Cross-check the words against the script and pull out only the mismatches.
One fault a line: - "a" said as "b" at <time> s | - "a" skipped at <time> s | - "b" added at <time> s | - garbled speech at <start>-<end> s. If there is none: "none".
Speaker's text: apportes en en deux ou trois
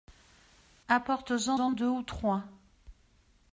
none